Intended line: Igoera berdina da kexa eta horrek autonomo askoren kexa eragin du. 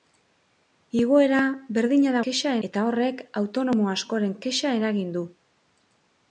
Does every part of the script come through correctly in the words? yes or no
yes